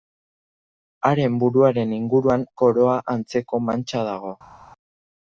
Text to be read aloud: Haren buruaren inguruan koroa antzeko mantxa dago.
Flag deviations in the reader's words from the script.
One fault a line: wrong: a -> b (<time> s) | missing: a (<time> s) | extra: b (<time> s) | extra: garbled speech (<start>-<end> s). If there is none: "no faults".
no faults